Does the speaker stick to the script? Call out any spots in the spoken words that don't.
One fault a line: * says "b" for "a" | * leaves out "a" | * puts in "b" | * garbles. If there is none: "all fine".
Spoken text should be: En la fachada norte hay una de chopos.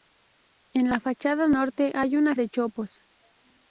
all fine